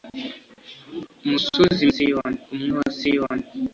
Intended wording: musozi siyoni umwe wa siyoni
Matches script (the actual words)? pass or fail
pass